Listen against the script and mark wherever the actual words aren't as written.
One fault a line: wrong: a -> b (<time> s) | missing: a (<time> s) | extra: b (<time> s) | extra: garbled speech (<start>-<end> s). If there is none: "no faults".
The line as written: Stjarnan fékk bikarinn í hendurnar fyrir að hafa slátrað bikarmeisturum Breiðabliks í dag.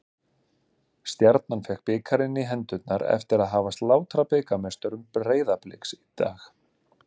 wrong: fyrir -> eftir (3.2 s)